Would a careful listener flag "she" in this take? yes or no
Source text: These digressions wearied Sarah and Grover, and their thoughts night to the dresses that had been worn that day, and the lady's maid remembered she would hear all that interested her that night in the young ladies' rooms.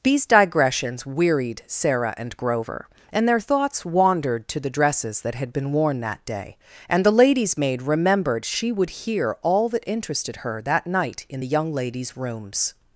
no